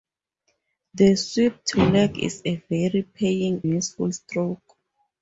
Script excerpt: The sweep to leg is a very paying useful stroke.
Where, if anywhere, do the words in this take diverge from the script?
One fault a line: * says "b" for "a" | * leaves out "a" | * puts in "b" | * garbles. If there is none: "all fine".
all fine